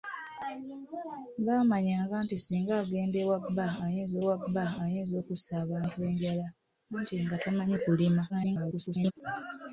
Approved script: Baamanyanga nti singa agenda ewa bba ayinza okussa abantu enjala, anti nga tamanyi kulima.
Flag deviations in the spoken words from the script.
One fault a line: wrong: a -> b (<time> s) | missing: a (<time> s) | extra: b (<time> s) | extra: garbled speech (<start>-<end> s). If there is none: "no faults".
extra: ewa bba ayinza (4.2 s)
extra: garbled speech (8.3-9.1 s)